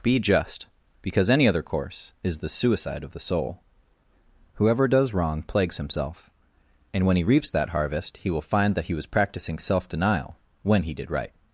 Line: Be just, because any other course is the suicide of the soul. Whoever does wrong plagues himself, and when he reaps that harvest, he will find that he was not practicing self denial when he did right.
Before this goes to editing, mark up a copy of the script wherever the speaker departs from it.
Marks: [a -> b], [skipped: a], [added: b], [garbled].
Be just, because any other course is the suicide of the soul. Whoever does wrong plagues himself, and when he reaps that harvest, he will find that he was [skipped: not] practicing self denial when he did right.